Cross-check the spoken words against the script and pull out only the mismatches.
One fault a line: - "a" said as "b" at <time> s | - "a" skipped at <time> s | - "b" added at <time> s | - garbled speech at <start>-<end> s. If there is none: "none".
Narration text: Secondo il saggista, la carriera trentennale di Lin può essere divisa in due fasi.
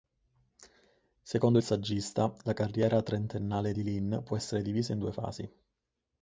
none